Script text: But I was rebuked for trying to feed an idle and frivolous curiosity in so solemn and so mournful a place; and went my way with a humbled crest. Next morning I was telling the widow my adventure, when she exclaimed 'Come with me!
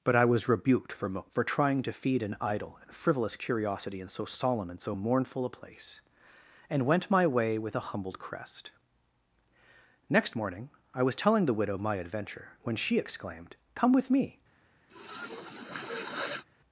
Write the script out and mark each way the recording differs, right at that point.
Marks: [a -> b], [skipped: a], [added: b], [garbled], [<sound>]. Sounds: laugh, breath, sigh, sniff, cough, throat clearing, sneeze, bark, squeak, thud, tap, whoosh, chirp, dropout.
But I was rebuked for [added: for] trying to feed an idle and frivolous curiosity in so solemn and so mournful a place; and went my way with a humbled crest. Next morning I was telling the widow my adventure, when she exclaimed 'Come with me! [sniff]